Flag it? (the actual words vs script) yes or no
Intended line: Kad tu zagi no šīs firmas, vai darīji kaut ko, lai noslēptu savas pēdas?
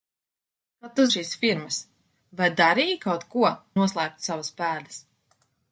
yes